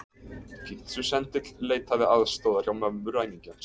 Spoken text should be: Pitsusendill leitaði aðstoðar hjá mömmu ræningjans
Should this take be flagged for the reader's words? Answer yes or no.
no